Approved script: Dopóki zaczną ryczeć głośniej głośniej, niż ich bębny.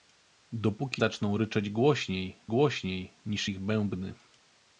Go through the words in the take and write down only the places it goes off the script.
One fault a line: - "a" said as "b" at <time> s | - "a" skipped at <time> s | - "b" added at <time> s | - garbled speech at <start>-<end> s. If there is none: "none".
none